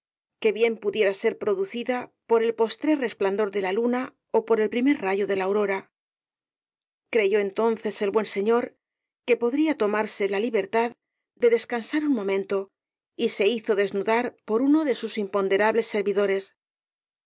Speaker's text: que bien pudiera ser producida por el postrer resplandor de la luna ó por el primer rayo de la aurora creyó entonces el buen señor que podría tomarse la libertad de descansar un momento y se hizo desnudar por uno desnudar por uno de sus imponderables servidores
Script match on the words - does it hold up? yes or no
no